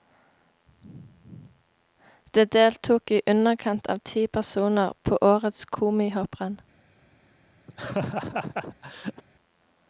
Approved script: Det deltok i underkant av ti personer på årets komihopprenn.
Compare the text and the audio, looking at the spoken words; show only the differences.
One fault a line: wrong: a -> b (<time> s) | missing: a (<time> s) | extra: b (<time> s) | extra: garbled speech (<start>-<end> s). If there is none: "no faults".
no faults